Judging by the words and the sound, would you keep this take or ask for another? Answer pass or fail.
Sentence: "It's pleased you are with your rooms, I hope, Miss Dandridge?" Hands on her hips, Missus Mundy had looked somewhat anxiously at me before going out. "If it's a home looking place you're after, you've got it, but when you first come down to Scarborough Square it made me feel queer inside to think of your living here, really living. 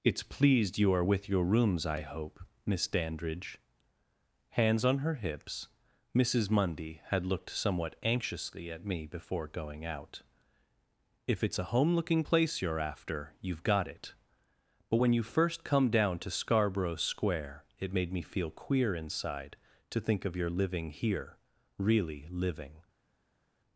pass